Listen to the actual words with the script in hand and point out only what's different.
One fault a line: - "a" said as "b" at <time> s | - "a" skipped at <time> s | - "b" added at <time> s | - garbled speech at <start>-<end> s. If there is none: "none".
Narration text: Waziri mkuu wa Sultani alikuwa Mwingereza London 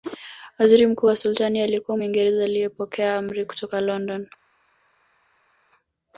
- "aliyepokea amri kutoka" added at 2.4 s